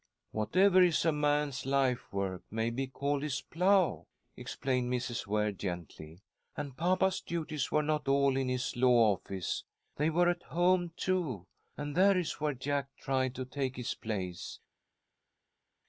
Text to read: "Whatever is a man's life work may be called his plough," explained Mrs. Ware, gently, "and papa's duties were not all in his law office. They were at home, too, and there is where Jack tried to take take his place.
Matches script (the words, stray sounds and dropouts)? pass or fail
fail